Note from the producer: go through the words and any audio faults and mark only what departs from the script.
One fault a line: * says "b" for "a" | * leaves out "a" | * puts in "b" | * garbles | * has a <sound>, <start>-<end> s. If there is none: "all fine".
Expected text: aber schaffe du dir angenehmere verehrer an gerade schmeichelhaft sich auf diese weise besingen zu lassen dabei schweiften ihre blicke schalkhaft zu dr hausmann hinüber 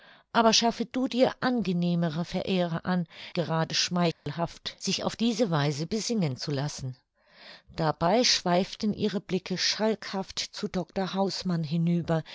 * has a dropout, 4.1-4.3 s